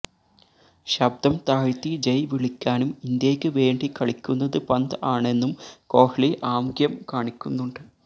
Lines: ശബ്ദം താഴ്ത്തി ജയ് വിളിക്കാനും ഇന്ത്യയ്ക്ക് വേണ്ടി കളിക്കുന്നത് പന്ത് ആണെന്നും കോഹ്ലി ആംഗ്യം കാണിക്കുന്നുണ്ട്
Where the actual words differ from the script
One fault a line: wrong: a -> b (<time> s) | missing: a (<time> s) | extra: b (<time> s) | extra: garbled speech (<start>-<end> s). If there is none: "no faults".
no faults